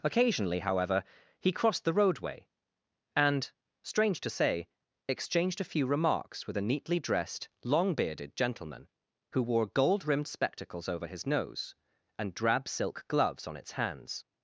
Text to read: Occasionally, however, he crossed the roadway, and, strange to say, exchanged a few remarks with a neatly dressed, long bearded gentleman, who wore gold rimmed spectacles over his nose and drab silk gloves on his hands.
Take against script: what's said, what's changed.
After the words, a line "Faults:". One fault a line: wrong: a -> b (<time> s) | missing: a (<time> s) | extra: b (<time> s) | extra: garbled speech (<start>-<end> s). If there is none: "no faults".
Occasionally, however, he crossed the roadway, and, strange to say, exchanged a few remarks with a neatly dressed, long bearded gentleman, who wore gold rimmed spectacles over his nose and drab silk gloves on its hands.
Faults:
wrong: his -> its (13.6 s)